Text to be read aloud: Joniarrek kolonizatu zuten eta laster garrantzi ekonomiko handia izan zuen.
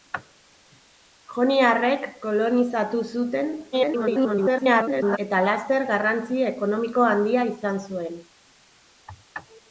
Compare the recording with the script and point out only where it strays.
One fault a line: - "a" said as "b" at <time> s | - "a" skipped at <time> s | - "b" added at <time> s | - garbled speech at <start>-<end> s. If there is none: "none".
- garbled speech at 3.7-5.2 s